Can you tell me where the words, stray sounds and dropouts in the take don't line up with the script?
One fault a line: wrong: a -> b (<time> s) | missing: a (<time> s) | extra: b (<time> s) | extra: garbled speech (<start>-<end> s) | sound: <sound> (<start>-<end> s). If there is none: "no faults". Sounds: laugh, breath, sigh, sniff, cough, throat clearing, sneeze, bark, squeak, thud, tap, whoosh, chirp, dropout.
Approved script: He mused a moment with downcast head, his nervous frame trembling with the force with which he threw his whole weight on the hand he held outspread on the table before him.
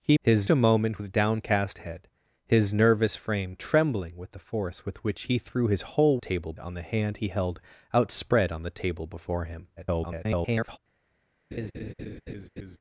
wrong: mused -> his (0.2 s)
wrong: weight -> table (6.2 s)
extra: garbled speech (9.8-10.8 s)
sound: laugh (11.5-12.8 s)